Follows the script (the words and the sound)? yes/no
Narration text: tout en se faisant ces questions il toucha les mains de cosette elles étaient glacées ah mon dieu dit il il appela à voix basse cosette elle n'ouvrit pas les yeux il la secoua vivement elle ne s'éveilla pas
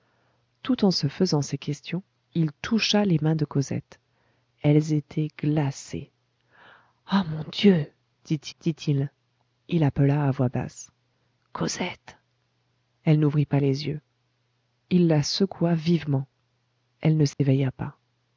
no